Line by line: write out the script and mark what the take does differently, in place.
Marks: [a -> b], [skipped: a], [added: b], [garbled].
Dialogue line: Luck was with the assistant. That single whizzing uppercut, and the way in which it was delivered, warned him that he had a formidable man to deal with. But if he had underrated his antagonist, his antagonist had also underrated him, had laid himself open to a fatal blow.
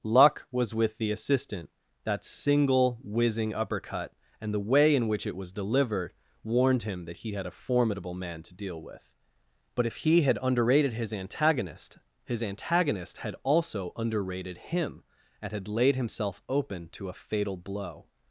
Luck was with the assistant. That single whizzing uppercut, and the way in which it was delivered, warned him that he had a formidable man to deal with. But if he had underrated his antagonist, his antagonist had also underrated him, [added: and] had laid himself open to a fatal blow.